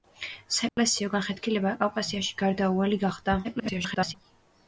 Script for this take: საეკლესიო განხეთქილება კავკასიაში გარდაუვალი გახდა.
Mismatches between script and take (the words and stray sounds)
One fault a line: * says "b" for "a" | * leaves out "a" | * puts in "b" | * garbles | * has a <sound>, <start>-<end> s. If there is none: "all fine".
* has a dropout, 0.7-0.8 s
* garbles